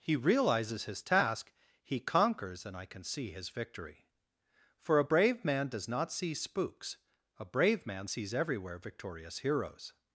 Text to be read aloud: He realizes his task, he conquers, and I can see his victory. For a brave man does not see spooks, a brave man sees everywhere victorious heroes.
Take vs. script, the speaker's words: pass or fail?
pass